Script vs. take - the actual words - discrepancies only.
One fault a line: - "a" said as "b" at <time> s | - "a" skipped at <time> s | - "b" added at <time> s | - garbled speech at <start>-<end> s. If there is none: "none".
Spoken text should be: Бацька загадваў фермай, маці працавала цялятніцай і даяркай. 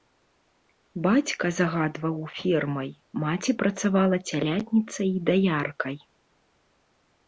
none